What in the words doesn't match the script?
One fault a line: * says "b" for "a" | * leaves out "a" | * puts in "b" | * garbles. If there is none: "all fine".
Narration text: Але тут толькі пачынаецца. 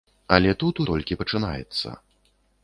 all fine